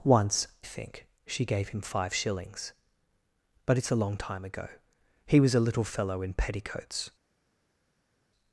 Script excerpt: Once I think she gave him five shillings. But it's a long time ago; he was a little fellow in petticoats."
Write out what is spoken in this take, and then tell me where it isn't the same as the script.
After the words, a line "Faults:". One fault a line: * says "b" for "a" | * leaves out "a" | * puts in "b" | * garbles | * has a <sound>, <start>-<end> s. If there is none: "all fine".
Once think she gave him five shillings. But it's a long time ago; he was a little fellow in petticoats."
Faults:
* leaves out "I"